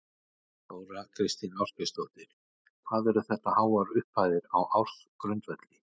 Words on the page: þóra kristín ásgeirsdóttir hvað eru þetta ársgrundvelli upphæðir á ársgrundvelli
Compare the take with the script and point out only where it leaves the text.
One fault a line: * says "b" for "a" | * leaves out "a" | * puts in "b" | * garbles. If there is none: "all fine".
* says "háar" for "ársgrundvelli"